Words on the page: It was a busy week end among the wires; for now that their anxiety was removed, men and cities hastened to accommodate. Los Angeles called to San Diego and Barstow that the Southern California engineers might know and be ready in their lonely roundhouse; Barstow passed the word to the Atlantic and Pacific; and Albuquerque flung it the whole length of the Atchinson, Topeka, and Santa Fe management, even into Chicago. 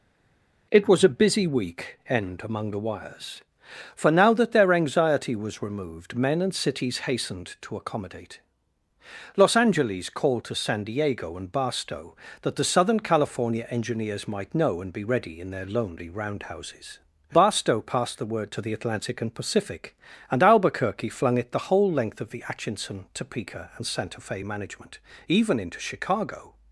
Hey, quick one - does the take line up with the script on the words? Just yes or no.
no